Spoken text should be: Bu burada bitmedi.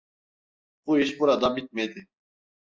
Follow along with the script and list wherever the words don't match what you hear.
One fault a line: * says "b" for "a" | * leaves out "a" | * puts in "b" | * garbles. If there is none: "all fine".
* puts in "iş"